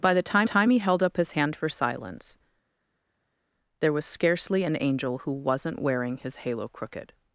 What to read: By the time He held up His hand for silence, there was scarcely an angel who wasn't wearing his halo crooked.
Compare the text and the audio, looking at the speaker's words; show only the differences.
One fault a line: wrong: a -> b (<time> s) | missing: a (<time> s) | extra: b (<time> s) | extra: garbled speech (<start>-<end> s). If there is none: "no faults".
extra: time (0.4 s)